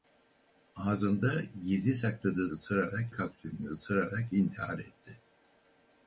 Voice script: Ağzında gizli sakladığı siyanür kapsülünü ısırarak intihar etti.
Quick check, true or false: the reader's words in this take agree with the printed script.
false